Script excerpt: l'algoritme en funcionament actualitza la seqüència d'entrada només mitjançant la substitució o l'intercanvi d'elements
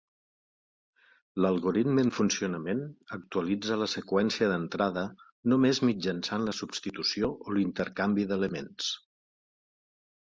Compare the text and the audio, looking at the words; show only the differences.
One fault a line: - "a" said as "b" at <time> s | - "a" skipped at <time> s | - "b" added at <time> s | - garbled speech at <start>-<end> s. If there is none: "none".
none